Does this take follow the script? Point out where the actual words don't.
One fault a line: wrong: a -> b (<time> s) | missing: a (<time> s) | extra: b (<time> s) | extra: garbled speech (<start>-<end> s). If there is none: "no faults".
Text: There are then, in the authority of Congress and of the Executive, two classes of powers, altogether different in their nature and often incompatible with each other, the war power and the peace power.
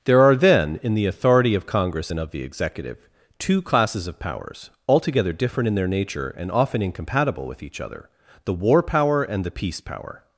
no faults